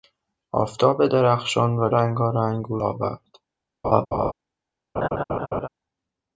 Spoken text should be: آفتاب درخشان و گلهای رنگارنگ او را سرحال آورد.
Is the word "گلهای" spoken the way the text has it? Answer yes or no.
no